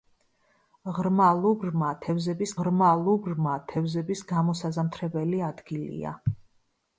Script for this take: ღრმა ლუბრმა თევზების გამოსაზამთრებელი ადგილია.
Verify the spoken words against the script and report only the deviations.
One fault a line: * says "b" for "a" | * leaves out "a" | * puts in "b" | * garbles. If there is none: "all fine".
* puts in "ღრმა ლუბრმა თევზების"